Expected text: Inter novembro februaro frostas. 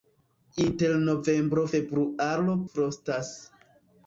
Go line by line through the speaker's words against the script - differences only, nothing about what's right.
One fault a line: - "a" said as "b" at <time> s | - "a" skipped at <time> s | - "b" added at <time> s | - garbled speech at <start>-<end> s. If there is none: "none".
none